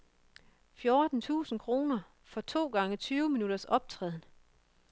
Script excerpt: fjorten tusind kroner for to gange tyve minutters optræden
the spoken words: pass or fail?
pass